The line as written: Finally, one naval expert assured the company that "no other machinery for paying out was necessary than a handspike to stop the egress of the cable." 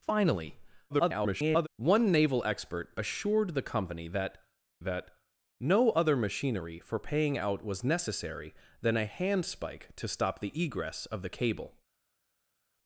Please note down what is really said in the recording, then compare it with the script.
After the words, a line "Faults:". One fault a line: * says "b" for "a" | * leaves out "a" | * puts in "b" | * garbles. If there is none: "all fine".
Finally, [garbled] one naval expert assured the company that that "no other machinery for paying out was necessary than a handspike to stop the egress of the cable."
Faults:
* garbles
* puts in "that"